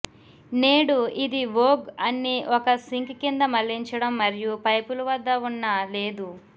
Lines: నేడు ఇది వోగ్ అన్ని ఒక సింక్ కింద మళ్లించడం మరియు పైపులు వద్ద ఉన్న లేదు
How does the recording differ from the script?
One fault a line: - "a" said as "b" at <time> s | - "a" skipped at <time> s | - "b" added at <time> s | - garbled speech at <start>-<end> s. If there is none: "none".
none